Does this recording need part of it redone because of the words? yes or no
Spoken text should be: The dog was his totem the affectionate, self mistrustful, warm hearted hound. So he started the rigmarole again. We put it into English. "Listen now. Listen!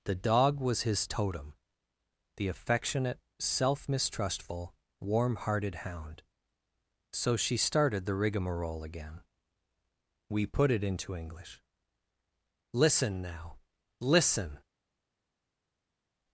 yes